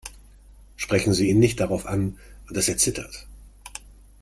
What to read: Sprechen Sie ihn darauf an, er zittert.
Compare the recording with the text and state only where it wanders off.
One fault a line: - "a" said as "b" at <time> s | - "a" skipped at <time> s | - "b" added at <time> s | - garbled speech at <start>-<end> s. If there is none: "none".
- "nicht" added at 1.4 s
- "dass" added at 2.5 s